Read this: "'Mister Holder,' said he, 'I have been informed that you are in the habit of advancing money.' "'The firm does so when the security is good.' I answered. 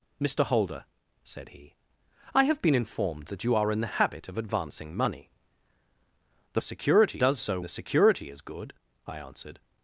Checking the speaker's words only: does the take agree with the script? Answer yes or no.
no